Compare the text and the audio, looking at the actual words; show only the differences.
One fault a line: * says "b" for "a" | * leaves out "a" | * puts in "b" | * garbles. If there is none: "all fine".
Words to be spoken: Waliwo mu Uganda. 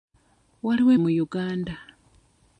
all fine